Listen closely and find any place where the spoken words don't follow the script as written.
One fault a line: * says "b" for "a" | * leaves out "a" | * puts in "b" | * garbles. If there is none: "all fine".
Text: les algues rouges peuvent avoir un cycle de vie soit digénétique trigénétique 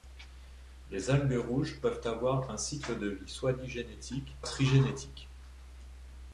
all fine